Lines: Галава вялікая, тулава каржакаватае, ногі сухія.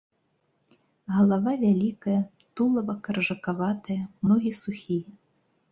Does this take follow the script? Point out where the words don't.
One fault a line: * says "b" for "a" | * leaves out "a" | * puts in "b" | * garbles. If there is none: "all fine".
all fine